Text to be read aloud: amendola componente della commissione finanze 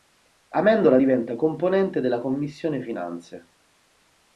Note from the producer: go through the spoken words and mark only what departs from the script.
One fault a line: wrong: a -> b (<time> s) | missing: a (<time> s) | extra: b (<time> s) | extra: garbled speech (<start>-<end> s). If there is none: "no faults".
extra: diventa (0.9 s)